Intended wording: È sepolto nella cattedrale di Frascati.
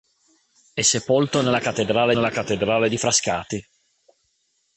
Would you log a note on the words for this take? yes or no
yes